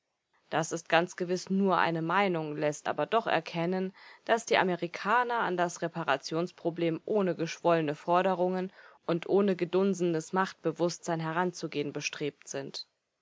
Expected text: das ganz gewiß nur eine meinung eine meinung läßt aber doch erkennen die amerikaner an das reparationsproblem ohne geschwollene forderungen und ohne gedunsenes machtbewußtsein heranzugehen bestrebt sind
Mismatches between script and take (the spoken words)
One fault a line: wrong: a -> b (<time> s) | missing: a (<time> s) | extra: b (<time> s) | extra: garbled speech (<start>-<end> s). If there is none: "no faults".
extra: ist (0.7 s)
missing: eine meinung (2.6 s)
extra: daß (4.2 s)